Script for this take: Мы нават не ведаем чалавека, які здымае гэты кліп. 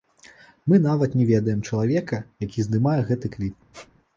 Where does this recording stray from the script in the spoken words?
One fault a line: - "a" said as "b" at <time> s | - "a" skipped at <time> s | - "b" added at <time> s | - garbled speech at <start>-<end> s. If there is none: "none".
none